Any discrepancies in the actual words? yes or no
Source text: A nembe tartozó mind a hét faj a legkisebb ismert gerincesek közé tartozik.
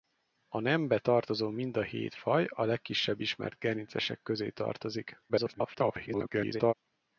yes